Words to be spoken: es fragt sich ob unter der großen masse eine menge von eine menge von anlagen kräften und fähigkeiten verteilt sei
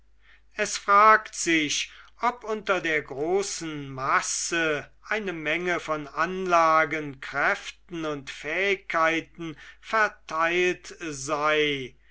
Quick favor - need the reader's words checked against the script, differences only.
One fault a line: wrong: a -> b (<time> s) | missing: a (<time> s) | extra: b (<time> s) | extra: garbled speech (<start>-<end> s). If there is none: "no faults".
missing: eine menge von (6.1 s)